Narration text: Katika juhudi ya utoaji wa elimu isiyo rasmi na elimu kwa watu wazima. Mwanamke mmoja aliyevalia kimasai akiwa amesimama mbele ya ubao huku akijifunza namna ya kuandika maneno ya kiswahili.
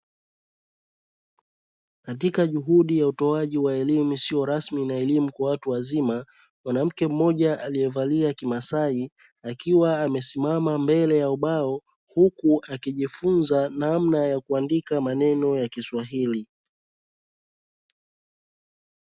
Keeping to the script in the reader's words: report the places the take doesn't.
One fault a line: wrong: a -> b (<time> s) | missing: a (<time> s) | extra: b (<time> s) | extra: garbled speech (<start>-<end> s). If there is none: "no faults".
no faults